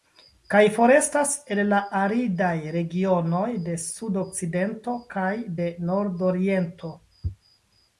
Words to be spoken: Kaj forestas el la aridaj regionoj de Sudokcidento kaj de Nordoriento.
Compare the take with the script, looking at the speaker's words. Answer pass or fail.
pass